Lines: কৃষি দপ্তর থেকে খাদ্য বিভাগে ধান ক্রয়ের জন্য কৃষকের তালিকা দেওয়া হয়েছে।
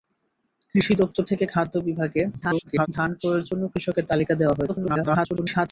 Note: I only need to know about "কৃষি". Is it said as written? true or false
true